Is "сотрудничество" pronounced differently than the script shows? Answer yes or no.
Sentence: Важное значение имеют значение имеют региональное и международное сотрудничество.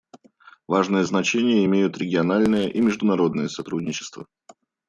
no